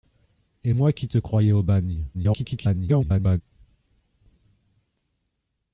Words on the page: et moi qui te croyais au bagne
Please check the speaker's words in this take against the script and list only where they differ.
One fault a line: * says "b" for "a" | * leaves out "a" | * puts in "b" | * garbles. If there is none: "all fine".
* garbles